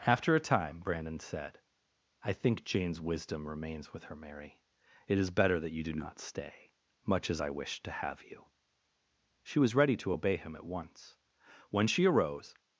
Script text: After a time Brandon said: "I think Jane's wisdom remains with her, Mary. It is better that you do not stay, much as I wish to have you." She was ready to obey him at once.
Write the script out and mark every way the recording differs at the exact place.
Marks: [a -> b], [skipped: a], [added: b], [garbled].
After a time Brandon said: "I think Jane's wisdom remains with her, Mary. It is better that you do not stay, much as I wish to have you." She was ready to obey him at once. [added: When she arose]